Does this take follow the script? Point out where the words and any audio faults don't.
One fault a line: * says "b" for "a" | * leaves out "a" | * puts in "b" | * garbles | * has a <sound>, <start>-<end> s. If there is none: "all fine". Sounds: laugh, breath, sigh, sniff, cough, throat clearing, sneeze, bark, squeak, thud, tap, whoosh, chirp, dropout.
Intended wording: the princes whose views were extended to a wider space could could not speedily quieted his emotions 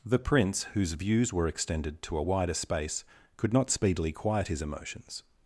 * says "prince" for "princes"
* leaves out "could"
* says "quiet" for "quieted"